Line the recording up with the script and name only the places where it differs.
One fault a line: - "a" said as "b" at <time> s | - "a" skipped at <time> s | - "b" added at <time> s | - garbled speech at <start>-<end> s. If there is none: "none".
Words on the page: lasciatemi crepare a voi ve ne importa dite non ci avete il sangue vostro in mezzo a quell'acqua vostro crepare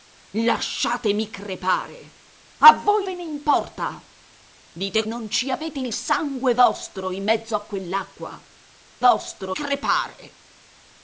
none